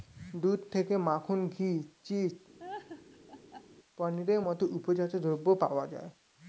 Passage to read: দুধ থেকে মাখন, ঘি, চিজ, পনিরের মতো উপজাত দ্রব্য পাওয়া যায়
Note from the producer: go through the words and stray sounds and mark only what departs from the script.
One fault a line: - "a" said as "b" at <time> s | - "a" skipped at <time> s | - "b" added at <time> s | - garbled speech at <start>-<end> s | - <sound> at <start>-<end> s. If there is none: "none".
- laugh at 2.6-3.7 s